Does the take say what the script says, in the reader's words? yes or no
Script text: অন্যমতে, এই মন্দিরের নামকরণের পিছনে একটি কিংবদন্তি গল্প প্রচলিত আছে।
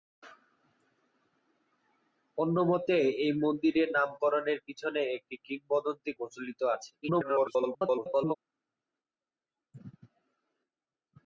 no